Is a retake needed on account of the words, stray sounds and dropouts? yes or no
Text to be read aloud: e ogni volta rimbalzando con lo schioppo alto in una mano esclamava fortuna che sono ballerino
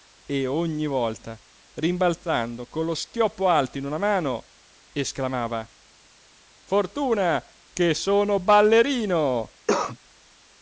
yes